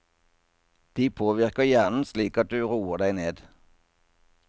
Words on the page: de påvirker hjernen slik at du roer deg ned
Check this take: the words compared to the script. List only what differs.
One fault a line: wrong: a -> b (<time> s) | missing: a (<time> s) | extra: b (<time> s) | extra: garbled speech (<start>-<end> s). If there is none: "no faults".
no faults